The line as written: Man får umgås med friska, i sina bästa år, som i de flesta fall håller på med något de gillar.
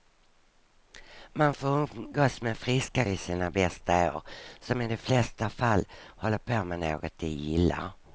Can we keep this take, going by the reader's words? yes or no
yes